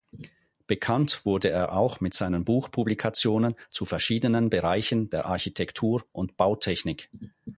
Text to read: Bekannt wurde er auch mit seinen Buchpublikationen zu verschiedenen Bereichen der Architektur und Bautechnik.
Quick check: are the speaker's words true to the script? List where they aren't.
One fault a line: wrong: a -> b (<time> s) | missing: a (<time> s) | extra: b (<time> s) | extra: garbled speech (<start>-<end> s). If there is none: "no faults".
no faults